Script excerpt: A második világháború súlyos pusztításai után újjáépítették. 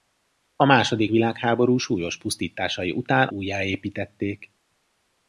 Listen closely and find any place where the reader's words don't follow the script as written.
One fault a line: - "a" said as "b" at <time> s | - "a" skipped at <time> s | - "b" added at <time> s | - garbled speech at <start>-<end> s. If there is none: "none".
none